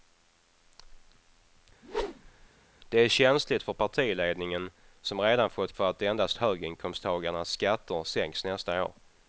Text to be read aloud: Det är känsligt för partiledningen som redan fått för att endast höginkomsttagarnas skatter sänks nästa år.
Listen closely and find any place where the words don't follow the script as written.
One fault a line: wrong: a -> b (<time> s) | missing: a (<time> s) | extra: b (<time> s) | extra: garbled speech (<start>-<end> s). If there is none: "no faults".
no faults